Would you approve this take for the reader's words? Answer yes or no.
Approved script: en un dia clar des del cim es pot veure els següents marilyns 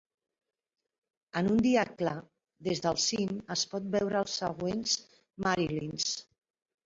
yes